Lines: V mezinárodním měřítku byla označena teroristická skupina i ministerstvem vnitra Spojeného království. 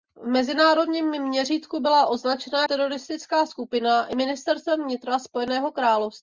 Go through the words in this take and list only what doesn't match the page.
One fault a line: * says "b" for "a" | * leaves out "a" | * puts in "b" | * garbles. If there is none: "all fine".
all fine